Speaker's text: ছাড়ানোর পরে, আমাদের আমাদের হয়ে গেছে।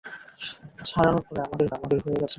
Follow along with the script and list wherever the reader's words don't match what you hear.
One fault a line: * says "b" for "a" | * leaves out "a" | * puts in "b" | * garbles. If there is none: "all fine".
all fine